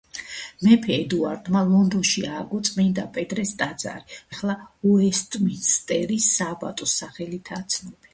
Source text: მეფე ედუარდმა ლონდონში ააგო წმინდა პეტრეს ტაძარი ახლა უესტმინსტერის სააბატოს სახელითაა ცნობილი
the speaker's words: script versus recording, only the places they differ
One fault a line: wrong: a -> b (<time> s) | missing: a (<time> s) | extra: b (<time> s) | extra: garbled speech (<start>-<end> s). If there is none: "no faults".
no faults